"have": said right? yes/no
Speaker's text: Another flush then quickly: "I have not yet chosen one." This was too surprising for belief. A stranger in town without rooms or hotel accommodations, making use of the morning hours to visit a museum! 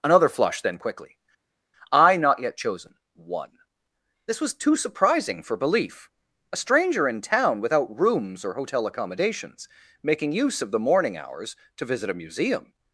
no